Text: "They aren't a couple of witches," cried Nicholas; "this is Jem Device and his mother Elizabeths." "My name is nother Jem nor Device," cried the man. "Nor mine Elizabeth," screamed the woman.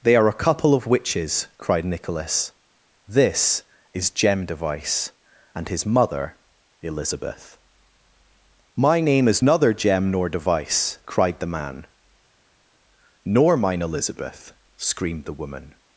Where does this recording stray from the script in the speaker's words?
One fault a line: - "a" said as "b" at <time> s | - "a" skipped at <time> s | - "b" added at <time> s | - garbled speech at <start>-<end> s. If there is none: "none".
- "aren't" said as "are" at 0.1 s
- "Elizabeths" said as "Elizabeth" at 6.8 s